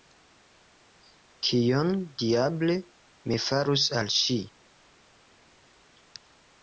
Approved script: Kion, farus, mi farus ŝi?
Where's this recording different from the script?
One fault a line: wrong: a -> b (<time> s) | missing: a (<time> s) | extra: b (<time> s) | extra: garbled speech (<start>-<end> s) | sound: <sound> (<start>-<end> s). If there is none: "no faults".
wrong: farus -> diable (2.2 s)
extra: al (4.0 s)